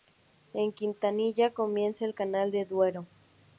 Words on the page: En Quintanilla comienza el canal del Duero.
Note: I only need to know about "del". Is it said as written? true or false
true